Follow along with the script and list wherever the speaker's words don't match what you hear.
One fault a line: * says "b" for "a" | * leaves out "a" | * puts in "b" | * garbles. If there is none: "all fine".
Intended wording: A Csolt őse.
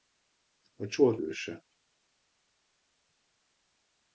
all fine